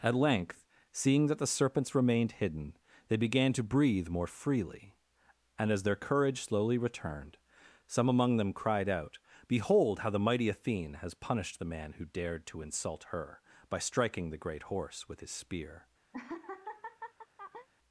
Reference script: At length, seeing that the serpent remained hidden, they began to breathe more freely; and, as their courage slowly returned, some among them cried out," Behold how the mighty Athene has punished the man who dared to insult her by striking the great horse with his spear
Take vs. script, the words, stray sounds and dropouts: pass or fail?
fail